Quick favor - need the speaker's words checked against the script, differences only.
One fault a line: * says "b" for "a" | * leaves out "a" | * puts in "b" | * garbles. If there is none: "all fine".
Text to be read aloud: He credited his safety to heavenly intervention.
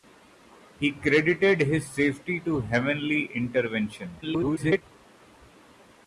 * garbles